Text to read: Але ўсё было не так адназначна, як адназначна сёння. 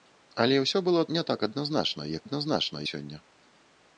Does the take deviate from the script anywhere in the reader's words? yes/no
no